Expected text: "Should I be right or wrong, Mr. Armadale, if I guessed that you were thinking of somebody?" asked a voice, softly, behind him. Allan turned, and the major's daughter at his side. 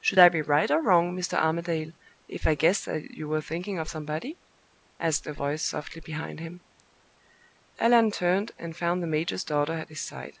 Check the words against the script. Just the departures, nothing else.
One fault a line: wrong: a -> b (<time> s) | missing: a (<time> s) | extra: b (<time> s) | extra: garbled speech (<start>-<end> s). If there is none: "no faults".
extra: found (8.8 s)